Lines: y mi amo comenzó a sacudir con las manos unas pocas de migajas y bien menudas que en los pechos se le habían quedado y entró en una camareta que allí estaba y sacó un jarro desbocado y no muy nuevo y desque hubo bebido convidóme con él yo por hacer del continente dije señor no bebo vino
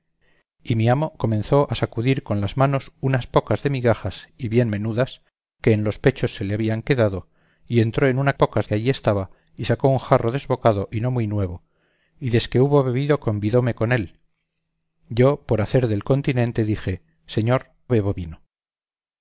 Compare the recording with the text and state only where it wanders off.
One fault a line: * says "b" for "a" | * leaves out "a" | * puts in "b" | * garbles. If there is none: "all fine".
* says "pocas" for "camareta"
* leaves out "no"